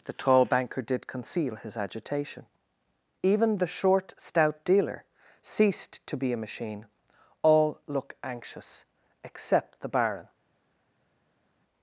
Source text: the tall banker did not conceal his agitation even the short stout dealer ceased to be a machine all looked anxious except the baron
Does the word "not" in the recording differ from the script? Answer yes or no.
yes